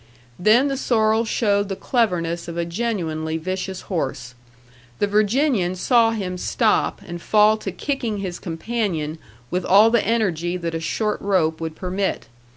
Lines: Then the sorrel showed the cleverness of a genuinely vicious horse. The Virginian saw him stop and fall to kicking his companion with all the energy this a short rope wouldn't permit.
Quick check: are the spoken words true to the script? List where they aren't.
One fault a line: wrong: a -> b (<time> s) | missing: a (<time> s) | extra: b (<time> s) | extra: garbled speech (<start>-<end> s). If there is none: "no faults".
wrong: this -> that (10.6 s)
wrong: wouldn't -> would (11.6 s)